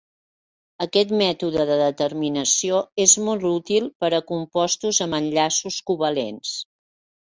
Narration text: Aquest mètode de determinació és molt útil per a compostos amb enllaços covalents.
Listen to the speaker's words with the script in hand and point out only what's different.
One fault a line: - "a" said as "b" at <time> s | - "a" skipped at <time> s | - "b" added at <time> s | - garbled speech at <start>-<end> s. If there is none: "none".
none